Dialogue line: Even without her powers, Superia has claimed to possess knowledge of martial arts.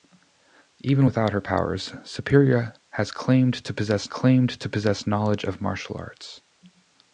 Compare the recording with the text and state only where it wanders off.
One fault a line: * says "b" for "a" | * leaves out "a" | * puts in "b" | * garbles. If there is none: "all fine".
* puts in "claimed to possess"